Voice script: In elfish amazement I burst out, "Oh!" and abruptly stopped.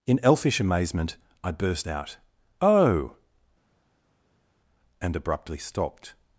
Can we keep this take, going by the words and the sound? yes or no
yes